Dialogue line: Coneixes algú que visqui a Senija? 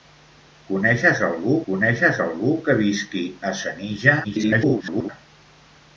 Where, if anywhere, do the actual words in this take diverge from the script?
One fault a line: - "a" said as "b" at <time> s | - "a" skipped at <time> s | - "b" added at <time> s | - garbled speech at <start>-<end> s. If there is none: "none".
- "coneixes algú" added at 1.7 s
- garbled speech at 4.2-5.1 s